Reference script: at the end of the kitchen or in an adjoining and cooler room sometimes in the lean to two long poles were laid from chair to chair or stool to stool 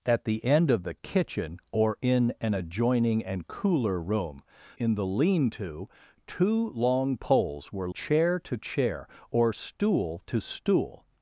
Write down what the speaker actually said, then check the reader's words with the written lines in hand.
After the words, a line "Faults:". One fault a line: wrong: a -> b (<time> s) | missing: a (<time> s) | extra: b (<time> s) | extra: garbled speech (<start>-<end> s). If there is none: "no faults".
at the end of the kitchen or in an adjoining and cooler room in the lean to two long poles were chair to chair or stool to stool
Faults:
missing: sometimes (4.4 s)
missing: laid from (7.9 s)